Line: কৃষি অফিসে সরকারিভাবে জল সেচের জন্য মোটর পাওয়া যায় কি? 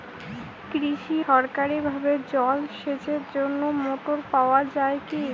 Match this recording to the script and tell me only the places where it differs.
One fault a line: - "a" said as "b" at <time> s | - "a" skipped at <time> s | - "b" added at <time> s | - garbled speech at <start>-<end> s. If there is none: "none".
- "অফিসে" skipped at 1.2 s